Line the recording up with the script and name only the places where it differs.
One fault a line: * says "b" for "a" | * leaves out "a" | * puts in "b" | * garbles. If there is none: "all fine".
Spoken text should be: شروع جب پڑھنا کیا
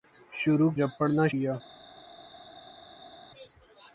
all fine